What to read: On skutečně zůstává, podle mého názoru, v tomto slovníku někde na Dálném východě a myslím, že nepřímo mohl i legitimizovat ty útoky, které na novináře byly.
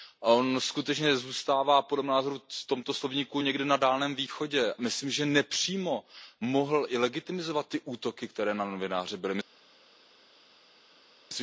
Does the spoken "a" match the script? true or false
false